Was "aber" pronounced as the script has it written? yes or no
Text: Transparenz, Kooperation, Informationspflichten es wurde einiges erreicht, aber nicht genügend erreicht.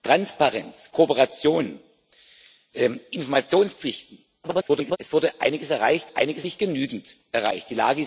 no